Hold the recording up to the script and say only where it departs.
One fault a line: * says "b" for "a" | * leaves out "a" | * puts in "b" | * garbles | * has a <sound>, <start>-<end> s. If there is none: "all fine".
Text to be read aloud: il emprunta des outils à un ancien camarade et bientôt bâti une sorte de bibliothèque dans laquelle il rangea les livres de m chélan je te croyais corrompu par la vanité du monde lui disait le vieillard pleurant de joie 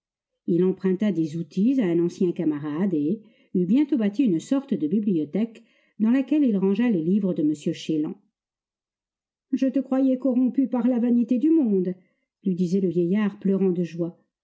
* puts in "eut"